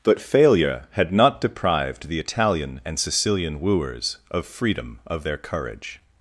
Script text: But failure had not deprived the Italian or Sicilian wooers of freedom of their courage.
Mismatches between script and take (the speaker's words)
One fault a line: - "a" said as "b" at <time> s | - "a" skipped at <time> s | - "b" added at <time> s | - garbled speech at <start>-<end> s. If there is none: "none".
- "or" said as "and" at 2.8 s